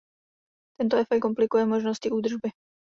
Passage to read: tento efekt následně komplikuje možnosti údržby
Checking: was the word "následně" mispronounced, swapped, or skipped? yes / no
yes